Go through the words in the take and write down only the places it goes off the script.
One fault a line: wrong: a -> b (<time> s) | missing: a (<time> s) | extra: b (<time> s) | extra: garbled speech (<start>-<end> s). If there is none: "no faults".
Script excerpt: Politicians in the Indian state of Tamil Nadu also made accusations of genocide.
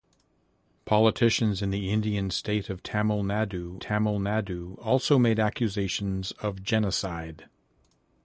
extra: Tamil Nadu (3.8 s)